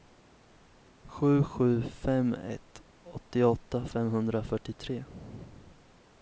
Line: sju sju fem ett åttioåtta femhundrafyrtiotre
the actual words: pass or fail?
pass